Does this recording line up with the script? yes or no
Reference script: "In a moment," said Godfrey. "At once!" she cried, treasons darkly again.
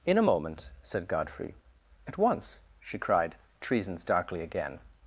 yes